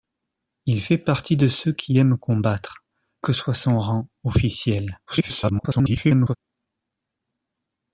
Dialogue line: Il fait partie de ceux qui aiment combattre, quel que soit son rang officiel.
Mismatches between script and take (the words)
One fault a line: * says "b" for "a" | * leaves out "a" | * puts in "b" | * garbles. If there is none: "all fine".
* leaves out "quel"
* garbles